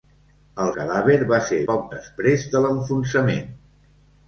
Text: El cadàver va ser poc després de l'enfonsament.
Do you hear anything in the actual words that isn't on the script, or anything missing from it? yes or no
no